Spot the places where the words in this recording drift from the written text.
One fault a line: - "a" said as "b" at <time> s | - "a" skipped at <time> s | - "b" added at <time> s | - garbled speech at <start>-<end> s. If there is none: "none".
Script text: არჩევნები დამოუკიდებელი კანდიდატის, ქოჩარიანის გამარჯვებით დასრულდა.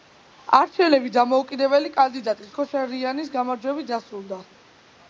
none